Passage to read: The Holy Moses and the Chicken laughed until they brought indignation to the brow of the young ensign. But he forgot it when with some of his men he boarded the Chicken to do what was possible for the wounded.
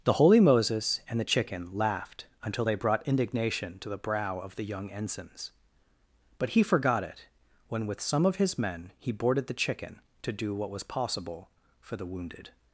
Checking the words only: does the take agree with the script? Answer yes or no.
no